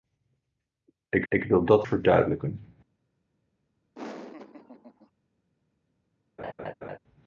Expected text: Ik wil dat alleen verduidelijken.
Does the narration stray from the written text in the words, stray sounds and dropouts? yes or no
yes